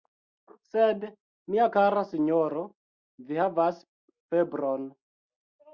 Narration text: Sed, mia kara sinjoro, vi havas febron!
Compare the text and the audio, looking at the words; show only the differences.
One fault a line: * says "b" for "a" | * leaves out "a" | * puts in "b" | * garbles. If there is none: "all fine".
all fine